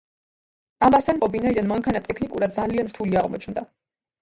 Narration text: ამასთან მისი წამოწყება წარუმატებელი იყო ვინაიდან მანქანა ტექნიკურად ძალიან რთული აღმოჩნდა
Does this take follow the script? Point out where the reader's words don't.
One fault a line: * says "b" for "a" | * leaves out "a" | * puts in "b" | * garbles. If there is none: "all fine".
* leaves out "მისი წამოწყება წარუმატებელი"